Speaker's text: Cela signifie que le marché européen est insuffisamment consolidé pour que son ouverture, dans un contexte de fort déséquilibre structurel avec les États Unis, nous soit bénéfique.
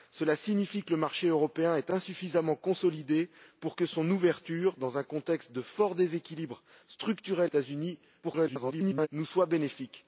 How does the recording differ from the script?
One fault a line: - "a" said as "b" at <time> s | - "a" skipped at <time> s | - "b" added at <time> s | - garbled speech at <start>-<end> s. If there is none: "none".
- "avec les" skipped at 7.5 s
- garbled speech at 8.2-9.1 s